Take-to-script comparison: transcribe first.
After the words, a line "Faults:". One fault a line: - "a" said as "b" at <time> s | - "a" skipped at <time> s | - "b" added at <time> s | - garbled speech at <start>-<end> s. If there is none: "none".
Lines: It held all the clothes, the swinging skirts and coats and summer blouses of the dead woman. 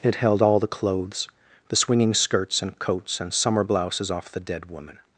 It held all the clothes, the swinging skirts and coats and summer blouses off the dead woman.
Faults:
- "of" said as "off" at 4.1 s